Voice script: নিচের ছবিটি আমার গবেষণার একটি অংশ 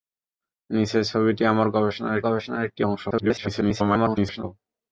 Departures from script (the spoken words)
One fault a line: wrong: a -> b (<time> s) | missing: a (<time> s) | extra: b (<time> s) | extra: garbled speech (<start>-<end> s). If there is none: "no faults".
extra: গবেষণার (2.2 s)
extra: garbled speech (3.1-4.4 s)